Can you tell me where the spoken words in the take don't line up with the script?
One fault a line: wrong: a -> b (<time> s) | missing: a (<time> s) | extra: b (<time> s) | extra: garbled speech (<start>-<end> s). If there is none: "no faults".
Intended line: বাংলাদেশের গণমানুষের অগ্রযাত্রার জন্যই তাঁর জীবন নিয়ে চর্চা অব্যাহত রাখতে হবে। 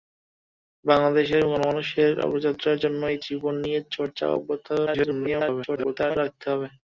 missing: তাঁর (3.2 s)
extra: garbled speech (4.9-6.2 s)